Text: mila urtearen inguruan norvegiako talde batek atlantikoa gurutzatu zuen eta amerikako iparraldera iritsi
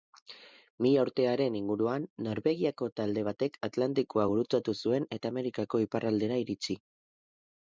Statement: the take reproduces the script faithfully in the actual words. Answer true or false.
true